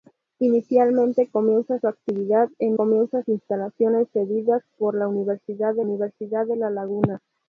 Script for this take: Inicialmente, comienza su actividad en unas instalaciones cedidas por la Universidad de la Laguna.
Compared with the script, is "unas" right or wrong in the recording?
wrong